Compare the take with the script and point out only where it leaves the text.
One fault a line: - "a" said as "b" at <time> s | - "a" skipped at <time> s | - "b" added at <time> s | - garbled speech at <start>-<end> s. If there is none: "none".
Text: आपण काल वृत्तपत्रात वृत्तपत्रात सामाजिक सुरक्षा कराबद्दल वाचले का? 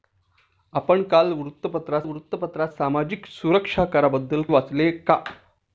none